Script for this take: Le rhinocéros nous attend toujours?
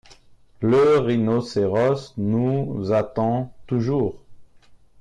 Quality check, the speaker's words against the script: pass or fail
pass